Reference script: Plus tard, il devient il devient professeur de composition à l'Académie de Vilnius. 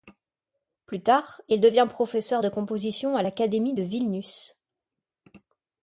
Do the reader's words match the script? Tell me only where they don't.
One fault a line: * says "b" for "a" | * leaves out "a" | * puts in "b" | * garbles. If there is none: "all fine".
* leaves out "il devient"